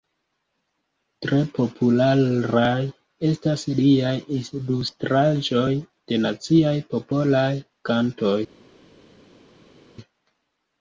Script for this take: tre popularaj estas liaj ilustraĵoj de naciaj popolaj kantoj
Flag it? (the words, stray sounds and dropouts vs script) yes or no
no